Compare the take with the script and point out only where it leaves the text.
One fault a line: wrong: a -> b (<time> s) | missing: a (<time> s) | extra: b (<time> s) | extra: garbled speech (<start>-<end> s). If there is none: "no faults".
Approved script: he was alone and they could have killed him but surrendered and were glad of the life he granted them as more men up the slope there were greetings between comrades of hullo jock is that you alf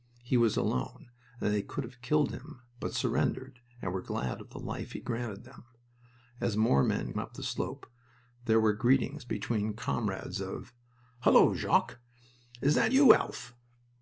no faults